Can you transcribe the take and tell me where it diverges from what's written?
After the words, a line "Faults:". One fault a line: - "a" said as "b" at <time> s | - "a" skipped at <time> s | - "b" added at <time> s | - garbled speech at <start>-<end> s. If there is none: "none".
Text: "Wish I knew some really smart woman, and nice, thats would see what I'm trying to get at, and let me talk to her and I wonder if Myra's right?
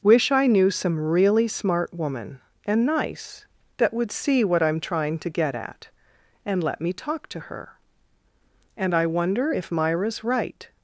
"Wish I knew some really smart woman, and nice, that would see what I'm trying to get at, and let me talk to her and I wonder if Myra's right?
Faults:
- "thats" said as "that" at 3.8 s